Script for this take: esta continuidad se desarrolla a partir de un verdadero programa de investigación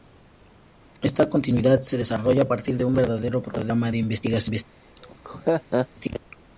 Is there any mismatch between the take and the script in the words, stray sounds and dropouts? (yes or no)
yes